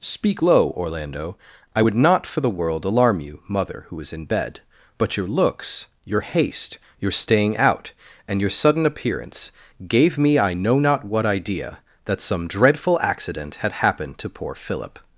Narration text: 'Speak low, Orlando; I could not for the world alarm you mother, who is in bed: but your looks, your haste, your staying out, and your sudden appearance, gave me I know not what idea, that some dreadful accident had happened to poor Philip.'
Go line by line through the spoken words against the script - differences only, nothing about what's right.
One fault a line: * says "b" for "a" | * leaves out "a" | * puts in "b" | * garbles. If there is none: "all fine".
* says "would" for "could"